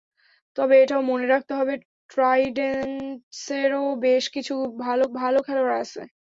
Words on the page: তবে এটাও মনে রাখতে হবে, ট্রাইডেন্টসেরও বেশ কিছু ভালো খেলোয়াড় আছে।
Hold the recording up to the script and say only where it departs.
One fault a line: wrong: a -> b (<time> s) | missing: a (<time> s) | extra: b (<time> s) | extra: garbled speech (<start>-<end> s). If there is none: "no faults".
extra: ভালো (5.1 s)